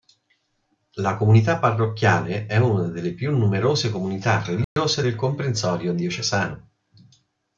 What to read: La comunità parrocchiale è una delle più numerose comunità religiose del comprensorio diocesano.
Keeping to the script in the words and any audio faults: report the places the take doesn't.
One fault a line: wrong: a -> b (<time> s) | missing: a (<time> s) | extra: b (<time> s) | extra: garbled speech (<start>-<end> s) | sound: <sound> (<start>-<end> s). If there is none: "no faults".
sound: dropout (4.6-4.8 s)